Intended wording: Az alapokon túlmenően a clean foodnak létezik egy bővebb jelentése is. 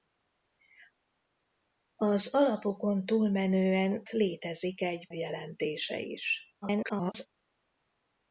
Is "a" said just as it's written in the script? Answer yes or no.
no